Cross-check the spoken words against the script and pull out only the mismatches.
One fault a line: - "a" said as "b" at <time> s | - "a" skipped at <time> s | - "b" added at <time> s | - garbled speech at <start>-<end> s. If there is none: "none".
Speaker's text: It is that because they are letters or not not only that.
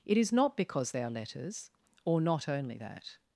- "that" said as "not" at 0.3 s
- "not" skipped at 2.5 s